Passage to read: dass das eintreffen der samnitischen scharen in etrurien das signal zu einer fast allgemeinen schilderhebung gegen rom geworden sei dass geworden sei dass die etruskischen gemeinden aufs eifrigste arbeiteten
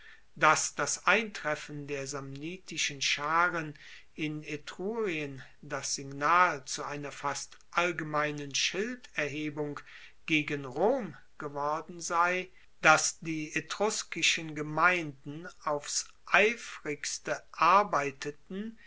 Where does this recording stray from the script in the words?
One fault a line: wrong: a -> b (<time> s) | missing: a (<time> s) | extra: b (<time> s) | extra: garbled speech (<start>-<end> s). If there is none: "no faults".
missing: geworden sei dass (13.2 s)